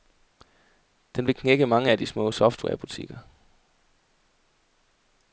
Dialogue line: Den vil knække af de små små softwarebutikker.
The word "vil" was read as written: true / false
true